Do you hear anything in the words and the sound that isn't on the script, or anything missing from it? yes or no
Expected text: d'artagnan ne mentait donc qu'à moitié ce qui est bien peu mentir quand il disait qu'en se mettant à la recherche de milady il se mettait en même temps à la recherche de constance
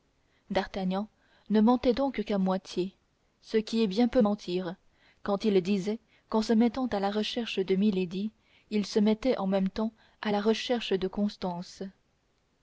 no